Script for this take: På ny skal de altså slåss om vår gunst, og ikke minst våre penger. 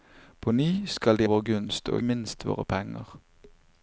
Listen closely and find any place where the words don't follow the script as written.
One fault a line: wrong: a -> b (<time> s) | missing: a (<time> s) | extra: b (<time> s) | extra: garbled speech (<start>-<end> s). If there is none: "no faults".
missing: altså slåss om (1.3 s)
missing: ikke (2.0 s)